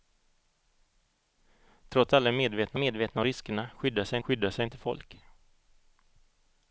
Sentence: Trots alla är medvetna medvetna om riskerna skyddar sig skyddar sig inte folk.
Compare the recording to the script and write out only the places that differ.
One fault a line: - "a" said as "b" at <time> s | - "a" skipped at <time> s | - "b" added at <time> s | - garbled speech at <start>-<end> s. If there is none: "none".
none